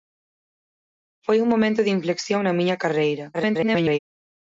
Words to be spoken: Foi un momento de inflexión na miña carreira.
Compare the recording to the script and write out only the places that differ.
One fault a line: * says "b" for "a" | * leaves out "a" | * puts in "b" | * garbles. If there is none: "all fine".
* garbles